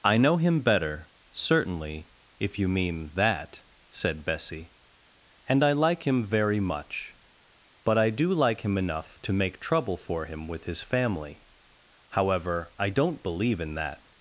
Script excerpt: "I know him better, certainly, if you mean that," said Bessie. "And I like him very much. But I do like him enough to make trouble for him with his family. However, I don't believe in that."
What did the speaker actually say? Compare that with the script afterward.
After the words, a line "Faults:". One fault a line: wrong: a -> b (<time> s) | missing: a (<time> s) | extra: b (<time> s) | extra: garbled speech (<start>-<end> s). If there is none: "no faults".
"I know him better, certainly, if you mean that," said Bessie. "And I like him very much. But I do like him enough to make trouble for him with his family. However, I don't believe in that."
Faults:
no faults